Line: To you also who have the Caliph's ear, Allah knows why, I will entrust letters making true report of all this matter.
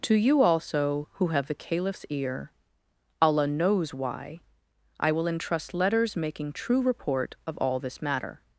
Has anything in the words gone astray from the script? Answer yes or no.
no